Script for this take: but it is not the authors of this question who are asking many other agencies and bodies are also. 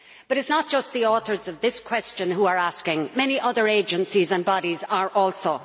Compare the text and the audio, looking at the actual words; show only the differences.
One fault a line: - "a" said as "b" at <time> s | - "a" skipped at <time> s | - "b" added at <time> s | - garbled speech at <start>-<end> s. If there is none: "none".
- "just" added at 0.7 s